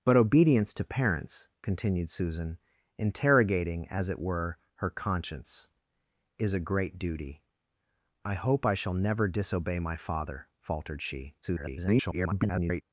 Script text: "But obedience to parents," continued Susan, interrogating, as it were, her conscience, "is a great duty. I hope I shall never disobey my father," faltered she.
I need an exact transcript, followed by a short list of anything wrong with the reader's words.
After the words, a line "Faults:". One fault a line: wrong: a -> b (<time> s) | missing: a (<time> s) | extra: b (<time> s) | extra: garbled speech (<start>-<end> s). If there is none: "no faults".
"But obedience to parents," continued Susan, interrogating, as it were, her conscience, "is a great duty. I hope I shall never disobey my father," faltered she. [garbled]
Faults:
extra: garbled speech (11.4-12.8 s)